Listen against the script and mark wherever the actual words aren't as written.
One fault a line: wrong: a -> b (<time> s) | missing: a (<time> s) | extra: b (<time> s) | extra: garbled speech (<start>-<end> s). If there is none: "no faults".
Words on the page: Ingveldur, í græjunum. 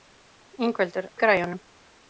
no faults